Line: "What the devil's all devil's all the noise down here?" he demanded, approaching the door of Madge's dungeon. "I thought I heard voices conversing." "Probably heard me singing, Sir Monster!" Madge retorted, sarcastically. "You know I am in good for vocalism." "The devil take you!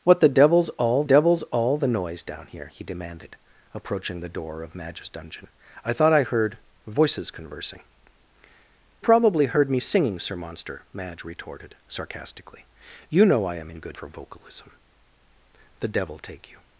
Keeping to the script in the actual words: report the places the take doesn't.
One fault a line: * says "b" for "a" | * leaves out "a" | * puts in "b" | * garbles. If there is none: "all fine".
all fine